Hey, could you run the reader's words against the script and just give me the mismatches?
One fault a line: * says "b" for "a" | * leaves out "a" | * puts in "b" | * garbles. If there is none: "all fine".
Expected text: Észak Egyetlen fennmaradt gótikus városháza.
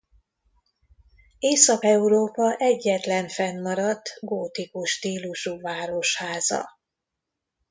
* puts in "Európa"
* puts in "stílusú"